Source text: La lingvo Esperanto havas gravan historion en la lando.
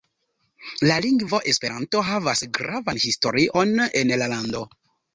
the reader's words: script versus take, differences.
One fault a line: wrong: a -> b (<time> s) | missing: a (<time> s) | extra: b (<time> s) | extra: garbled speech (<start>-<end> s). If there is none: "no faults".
no faults